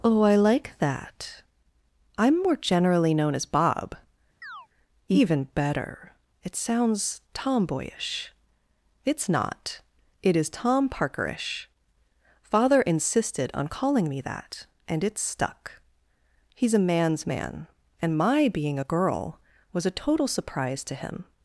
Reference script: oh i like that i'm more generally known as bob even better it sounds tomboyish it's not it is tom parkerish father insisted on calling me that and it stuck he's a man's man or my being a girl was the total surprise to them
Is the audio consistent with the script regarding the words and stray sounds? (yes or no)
no